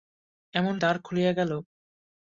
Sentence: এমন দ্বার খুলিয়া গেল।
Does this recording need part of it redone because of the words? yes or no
no